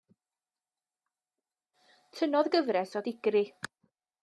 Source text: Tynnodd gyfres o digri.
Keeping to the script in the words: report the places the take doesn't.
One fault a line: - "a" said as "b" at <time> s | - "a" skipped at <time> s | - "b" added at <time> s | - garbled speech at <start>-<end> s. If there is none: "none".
none